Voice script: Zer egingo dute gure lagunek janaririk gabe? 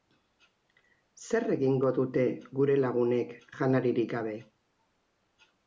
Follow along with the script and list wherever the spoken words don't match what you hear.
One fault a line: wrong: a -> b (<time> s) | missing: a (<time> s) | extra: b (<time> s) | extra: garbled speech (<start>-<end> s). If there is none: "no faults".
no faults